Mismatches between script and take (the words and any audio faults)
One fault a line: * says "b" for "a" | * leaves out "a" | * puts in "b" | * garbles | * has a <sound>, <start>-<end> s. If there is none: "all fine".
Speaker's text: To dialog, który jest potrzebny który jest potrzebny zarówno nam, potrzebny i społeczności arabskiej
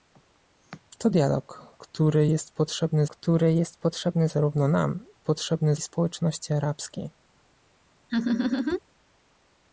* has a laugh, 8.1-8.8 s